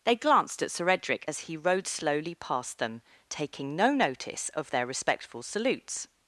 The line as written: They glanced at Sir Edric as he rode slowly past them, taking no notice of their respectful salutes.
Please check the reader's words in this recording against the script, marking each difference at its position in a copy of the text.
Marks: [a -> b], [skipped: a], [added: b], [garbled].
They glanced at Sir Edric as he rode slowly past them, taking no notice of their respectful salutes.